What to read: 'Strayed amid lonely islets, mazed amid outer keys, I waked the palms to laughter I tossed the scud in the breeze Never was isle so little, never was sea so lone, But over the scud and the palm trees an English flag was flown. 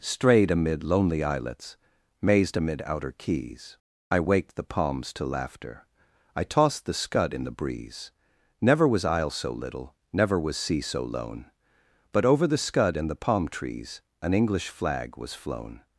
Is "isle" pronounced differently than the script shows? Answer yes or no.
no